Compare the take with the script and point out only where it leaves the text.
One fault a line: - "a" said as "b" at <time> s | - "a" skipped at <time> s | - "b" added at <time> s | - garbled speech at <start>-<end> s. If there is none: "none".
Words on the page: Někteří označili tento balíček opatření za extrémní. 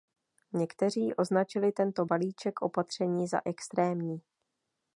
none